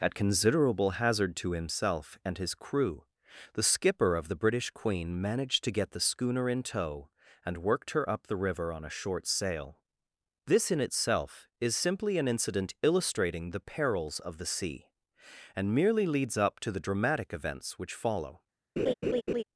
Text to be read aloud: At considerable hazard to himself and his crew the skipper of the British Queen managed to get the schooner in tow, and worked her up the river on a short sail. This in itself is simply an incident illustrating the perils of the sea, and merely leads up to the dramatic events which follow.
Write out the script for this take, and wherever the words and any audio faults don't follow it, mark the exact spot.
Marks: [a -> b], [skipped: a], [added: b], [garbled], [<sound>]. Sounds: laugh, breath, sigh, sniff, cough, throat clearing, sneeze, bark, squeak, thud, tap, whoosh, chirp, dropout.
At considerable hazard to himself and his crew the skipper of the British Queen managed to get the schooner in tow, and worked her up the river on a short sail. This in itself is simply an incident illustrating the perils of the sea, and merely leads up to the dramatic events which follow. [laugh]